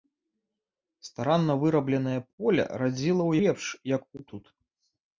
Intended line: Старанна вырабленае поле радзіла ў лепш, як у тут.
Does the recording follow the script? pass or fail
pass